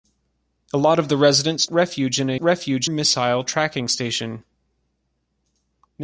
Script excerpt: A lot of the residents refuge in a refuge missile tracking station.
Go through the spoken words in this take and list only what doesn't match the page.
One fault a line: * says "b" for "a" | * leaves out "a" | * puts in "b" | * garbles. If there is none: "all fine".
all fine